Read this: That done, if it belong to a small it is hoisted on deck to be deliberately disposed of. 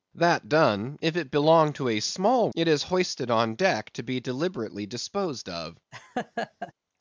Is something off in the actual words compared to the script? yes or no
no